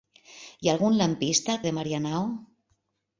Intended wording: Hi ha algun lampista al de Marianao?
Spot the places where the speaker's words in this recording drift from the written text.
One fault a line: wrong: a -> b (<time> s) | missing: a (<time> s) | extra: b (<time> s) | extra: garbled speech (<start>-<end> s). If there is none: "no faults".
no faults